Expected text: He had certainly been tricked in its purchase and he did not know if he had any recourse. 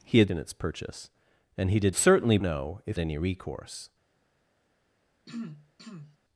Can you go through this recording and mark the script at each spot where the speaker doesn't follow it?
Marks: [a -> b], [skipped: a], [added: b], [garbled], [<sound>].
He had [skipped: certainly been tricked] in its purchase and he did [not -> certainly] know if [skipped: he had] any recourse. [throat clearing]